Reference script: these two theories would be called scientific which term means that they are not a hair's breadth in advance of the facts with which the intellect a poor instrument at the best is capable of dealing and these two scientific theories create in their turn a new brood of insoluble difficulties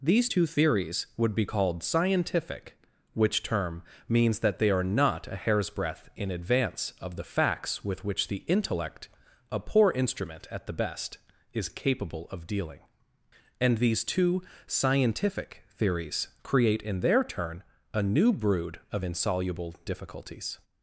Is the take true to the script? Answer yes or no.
yes